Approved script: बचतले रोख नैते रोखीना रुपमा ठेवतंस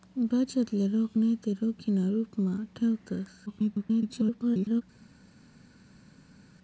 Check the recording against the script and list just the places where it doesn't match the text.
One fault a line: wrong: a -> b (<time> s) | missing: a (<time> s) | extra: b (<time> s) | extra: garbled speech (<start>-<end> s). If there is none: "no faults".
extra: garbled speech (3.5-4.8 s)